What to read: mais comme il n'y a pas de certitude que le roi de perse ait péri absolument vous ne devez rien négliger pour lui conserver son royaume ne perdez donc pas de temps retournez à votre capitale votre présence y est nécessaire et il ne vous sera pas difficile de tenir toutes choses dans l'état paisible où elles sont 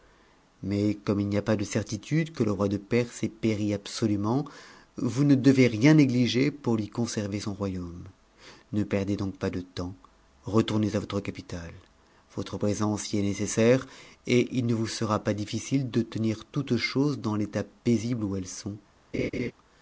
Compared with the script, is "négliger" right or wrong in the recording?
right